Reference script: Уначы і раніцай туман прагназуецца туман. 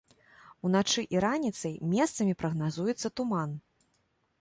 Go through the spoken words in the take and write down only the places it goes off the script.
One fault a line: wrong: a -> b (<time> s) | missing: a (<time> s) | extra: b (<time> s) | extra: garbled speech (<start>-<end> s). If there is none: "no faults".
wrong: туман -> месцамі (1.9 s)